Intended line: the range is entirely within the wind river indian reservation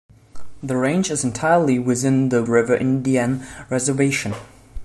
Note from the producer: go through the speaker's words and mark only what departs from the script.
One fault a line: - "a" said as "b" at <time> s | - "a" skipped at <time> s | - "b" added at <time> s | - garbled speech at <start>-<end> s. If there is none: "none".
- "wind" skipped at 2.4 s